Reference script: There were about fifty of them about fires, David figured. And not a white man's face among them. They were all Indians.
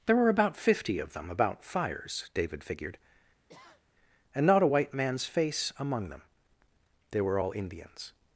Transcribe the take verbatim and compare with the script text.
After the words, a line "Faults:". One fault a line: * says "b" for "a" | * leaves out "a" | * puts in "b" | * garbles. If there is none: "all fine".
There were about fifty of them about fires, David figured. And not a white man's face among them. They were all Indians.
Faults:
all fine